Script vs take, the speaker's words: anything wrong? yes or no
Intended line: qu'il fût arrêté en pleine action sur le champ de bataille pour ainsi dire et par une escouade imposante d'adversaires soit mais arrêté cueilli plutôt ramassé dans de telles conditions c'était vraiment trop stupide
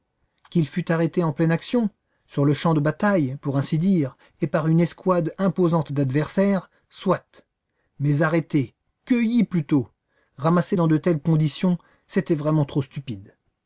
no